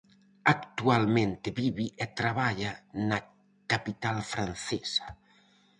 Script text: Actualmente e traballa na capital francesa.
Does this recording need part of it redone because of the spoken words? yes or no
yes